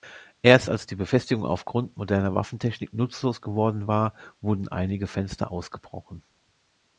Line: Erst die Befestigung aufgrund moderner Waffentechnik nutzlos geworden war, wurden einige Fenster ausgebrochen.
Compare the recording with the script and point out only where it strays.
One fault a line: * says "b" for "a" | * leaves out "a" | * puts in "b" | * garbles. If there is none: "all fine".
* puts in "als"